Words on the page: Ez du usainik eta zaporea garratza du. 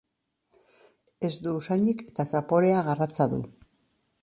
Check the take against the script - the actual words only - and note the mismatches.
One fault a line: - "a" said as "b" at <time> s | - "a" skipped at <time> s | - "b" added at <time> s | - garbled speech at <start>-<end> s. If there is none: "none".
none